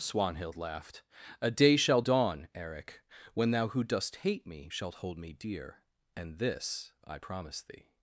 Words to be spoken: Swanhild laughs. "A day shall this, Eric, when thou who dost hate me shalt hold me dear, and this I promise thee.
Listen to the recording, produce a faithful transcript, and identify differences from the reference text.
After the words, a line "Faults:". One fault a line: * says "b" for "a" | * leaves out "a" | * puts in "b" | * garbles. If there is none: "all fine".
Swanhild laughed. "A day shall dawn, Eric, when thou who dost hate me shalt hold me dear, and this I promise thee.
Faults:
* says "laughed" for "laughs"
* says "dawn" for "this"